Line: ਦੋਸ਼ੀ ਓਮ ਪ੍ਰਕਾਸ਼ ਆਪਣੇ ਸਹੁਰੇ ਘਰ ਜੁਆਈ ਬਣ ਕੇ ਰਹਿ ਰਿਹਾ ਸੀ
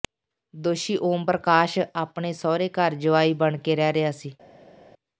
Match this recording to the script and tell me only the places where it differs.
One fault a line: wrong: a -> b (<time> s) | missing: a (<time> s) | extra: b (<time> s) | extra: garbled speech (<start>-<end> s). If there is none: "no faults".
no faults